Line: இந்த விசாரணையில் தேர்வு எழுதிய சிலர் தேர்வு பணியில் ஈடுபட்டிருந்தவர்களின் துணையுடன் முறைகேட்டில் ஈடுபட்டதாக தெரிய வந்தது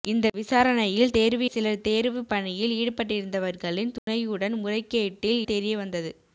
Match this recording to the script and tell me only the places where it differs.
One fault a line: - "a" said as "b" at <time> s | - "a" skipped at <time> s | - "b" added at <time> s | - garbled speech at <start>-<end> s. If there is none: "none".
- "எழுதிய" skipped at 1.5 s
- "ஈடுபட்டதாக" skipped at 5.4 s